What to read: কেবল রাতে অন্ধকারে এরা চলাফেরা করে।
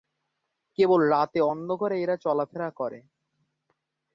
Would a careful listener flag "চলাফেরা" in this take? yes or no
no